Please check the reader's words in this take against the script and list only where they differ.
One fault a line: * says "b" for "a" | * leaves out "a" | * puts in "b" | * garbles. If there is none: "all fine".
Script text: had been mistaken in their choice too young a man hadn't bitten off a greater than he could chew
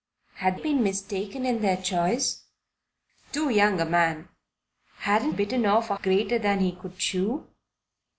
all fine